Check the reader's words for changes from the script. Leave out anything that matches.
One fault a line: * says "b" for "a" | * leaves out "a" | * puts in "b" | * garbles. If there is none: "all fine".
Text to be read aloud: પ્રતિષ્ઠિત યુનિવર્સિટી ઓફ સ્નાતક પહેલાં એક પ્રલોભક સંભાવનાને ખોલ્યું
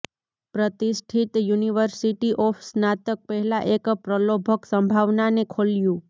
all fine